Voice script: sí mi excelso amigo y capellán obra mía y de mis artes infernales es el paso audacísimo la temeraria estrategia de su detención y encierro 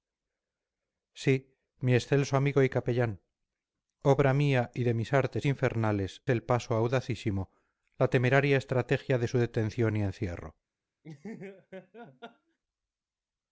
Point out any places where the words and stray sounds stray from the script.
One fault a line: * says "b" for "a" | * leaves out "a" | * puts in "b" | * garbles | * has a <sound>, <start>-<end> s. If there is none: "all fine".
* leaves out "es"
* has a laugh, 11.0-12.6 s